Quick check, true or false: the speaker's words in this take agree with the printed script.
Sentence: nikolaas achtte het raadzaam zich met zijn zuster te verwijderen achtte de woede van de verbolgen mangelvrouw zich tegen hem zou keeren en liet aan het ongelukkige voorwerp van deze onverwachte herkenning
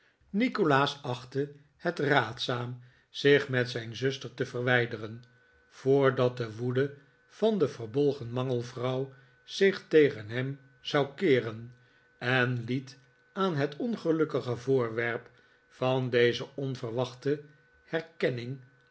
false